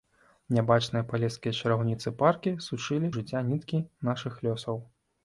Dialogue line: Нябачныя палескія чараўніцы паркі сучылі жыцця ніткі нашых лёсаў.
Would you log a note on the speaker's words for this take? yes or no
no